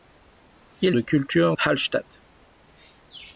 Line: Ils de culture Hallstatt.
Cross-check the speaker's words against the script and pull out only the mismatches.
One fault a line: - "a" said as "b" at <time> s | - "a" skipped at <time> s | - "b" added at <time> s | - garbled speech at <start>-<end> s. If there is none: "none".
none